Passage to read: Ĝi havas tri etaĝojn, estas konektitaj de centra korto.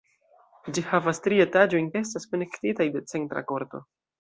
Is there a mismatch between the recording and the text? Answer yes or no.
no